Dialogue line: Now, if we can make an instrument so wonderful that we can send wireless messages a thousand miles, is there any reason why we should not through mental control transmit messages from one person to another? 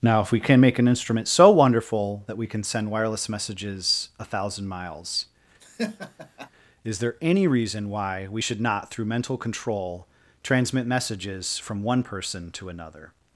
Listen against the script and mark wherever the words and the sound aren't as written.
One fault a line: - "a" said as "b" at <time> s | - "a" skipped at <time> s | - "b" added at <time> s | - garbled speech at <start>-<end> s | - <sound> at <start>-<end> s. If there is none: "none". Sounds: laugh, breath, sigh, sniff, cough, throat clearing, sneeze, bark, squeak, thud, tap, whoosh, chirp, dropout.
- laugh at 5.6-6.5 s